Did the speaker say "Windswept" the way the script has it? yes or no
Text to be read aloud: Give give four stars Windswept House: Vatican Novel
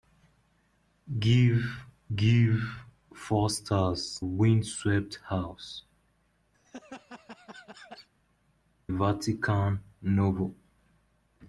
yes